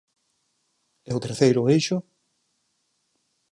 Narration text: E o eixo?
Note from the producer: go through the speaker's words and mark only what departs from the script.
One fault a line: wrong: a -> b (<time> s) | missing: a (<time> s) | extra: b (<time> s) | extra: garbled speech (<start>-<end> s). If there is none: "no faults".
extra: terceiro (1.2 s)